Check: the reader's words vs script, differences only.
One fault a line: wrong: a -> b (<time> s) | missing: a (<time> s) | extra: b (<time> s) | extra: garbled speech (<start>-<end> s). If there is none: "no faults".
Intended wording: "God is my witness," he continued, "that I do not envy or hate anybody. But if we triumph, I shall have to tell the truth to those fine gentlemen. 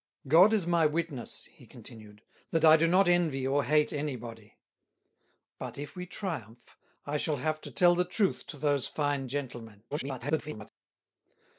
extra: garbled speech (9.9-10.7 s)